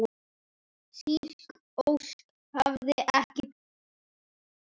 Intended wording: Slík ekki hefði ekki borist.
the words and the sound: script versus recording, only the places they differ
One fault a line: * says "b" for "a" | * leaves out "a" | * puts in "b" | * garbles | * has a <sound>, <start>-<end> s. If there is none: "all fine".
* says "ósk" for "ekki"